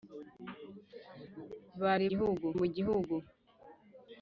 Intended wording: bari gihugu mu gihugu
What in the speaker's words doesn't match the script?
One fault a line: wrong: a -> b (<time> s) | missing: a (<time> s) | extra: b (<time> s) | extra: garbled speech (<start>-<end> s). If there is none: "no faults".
no faults